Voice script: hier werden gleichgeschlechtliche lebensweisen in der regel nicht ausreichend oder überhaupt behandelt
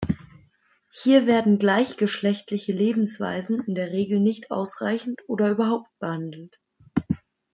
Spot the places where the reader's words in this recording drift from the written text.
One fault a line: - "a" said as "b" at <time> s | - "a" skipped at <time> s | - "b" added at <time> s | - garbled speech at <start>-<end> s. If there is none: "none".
none